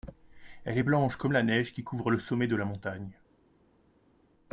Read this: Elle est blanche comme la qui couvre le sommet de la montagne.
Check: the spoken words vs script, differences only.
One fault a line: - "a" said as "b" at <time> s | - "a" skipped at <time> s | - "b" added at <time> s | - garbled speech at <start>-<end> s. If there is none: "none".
- "neige" added at 1.4 s